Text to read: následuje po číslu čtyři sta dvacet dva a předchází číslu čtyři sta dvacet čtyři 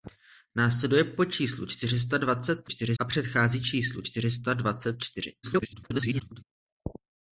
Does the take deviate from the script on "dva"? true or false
true